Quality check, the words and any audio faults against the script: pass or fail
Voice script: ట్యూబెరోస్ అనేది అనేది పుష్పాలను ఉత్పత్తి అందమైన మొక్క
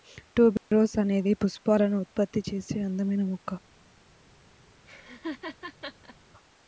fail